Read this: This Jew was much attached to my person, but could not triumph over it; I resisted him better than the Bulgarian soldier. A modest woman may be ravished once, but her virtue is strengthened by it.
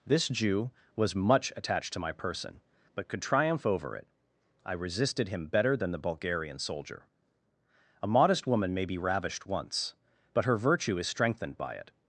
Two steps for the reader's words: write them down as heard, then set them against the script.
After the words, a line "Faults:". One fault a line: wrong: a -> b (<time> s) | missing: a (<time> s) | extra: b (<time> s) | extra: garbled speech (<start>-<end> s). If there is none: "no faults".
This Jew was much attached to my person, but could triumph over it; I resisted him better than the Bulgarian soldier. A modest woman may be ravished once, but her virtue is strengthened by it.
Faults:
missing: not (3.2 s)